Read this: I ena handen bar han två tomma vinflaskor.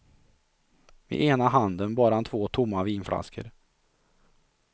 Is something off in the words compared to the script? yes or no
no